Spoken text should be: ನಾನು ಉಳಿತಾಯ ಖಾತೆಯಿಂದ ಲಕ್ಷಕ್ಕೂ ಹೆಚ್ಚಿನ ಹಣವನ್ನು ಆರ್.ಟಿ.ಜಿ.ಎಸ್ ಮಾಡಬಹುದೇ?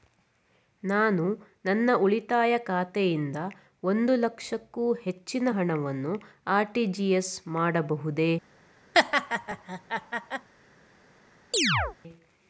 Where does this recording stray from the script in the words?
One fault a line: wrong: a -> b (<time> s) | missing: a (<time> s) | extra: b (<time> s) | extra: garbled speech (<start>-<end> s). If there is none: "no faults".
extra: ನನ್ನ (1.6 s)
extra: ಒಂದು (3.8 s)